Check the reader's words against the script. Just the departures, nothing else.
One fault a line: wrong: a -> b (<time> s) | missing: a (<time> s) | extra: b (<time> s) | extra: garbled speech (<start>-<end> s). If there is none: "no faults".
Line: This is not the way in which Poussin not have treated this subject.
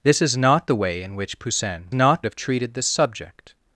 no faults